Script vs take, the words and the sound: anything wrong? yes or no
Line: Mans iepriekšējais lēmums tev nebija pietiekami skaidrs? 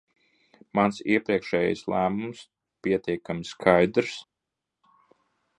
yes